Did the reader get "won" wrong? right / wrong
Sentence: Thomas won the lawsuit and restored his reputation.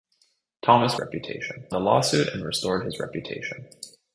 wrong